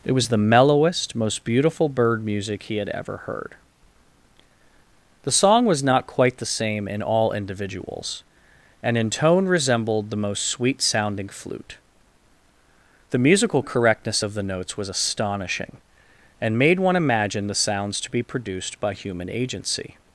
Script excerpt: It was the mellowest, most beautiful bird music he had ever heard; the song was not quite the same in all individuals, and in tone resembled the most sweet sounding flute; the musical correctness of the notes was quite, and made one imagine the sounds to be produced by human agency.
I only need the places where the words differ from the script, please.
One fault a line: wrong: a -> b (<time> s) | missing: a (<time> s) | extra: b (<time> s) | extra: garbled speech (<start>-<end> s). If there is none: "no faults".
wrong: quite -> astonishing (14.9 s)